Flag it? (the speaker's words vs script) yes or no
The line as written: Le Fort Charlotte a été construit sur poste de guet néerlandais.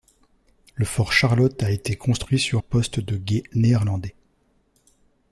no